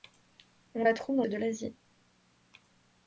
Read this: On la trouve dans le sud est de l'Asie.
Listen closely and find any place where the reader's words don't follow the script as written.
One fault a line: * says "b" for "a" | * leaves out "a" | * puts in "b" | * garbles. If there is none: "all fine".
* leaves out "le sud est"